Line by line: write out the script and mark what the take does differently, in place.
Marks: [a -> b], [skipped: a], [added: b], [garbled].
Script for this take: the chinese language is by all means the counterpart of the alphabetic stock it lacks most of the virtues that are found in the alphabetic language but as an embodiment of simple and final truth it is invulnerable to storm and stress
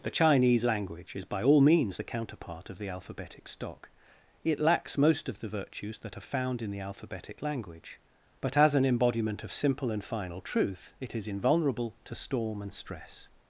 the chinese language is by all means the counterpart of the alphabetic stock it lacks most of the virtues that are found in the alphabetic language but as an embodiment of simple and final truth it is invulnerable to storm and stress